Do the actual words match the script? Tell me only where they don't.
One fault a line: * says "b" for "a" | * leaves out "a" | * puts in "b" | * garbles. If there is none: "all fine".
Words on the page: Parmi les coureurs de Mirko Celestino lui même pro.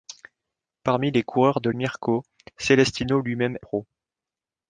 all fine